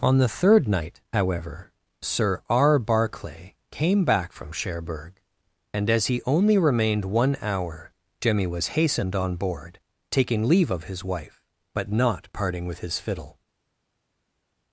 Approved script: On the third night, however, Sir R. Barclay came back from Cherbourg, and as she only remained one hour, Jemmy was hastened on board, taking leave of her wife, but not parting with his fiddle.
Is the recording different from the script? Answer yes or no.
yes